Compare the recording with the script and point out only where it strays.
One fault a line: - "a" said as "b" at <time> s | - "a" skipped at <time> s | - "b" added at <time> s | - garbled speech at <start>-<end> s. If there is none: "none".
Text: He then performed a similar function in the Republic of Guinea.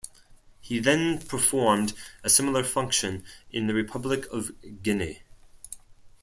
none